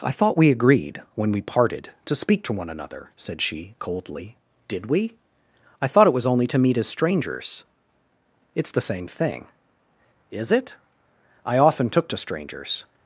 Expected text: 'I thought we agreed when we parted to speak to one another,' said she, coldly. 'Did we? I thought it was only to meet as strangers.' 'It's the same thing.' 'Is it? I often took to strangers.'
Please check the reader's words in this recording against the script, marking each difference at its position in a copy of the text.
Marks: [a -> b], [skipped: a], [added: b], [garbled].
'I thought we agreed when we parted to speak to one another,' said she, coldly. 'Did we? I thought it was only to meet as strangers.' 'It's the same thing.' 'Is it? I often took to strangers.'